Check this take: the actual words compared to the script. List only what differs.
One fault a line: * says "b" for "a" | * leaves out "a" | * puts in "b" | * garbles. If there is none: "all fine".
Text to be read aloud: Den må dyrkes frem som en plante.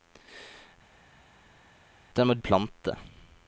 * leaves out "dyrkes frem som"